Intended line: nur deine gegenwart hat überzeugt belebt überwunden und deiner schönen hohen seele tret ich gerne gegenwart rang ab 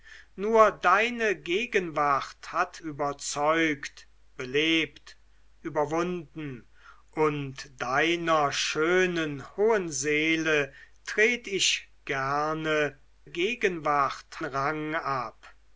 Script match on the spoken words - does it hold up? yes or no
yes